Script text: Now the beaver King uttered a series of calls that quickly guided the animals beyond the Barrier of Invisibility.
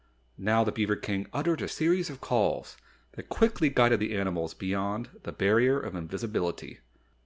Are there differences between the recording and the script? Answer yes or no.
no